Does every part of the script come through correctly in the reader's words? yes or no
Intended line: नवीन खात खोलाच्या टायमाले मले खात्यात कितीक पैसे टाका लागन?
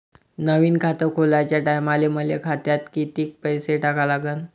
yes